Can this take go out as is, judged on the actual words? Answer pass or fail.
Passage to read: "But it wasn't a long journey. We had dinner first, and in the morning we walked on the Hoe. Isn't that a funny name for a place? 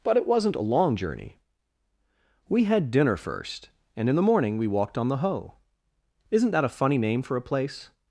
pass